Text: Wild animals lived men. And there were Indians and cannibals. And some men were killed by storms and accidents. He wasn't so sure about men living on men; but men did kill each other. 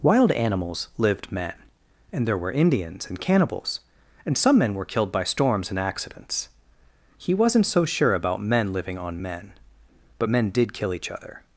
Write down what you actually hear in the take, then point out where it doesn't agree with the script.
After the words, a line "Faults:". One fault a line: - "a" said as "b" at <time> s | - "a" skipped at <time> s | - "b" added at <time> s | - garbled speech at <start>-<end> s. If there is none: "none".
Wild animals lived men. And there were Indians and cannibals. And some men were killed by storms and accidents. He wasn't so sure about men living on men; but men did kill each other.
Faults:
none